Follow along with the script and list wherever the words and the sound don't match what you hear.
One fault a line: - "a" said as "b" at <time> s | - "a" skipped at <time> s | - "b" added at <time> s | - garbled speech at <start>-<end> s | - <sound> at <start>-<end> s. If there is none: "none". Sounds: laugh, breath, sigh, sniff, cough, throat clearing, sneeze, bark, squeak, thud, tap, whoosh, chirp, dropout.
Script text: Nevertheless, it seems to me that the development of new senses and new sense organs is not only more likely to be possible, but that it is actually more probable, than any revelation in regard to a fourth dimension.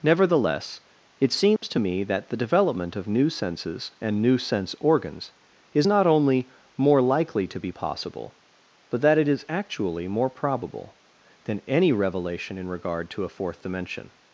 - dropout at 1.6-1.6 s